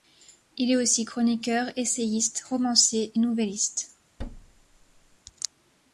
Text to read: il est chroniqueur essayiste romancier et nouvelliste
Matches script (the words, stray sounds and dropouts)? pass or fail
fail